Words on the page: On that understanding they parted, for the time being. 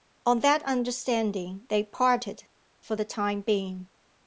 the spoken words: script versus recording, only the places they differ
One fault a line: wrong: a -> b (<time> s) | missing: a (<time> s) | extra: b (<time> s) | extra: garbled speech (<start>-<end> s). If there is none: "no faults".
no faults